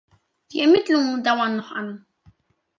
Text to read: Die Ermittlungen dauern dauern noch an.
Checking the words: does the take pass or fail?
fail